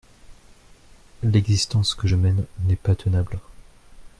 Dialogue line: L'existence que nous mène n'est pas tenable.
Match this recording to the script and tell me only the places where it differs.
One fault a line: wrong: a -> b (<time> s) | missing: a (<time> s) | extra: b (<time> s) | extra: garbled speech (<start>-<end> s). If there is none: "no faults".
wrong: nous -> je (2.1 s)